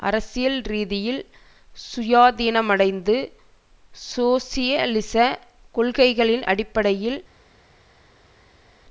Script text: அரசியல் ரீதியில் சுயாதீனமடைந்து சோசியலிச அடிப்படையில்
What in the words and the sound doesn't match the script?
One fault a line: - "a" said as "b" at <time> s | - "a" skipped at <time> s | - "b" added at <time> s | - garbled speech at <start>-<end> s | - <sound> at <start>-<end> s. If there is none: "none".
- "கொள்கைகளின்" added at 5.8 s